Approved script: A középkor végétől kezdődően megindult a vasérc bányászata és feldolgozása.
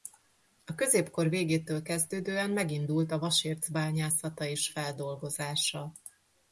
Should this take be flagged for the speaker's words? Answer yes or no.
no